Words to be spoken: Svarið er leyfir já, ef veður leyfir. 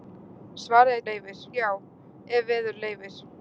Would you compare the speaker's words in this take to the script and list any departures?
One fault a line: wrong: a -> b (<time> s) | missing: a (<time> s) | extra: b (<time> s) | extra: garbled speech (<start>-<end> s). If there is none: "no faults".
no faults